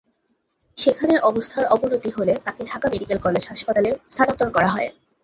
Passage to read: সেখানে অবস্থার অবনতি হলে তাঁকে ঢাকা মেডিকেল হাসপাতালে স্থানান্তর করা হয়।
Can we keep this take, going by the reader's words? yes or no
no